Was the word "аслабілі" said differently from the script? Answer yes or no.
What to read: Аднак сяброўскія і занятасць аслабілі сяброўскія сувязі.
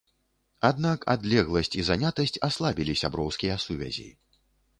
no